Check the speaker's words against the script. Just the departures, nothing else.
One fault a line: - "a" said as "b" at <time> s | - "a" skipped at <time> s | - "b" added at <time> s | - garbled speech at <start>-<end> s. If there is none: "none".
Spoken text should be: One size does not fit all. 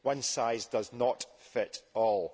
none